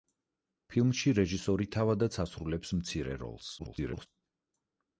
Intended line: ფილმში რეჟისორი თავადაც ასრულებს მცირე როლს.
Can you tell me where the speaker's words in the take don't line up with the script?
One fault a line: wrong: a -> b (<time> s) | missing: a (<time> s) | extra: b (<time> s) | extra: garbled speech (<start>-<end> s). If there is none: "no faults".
extra: garbled speech (3.6-4.1 s)